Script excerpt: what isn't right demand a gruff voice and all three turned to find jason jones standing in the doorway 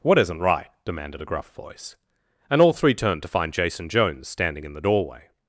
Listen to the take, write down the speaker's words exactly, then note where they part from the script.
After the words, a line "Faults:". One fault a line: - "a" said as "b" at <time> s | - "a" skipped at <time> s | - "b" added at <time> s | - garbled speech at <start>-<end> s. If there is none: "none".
what isn't right demanded a gruff voice and all three turned to find jason jones standing in the doorway
Faults:
- "demand" said as "demanded" at 0.8 s